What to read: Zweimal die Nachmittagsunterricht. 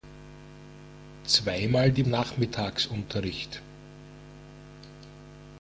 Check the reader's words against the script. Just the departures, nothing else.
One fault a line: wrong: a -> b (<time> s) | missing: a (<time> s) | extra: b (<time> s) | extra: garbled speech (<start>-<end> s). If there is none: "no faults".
no faults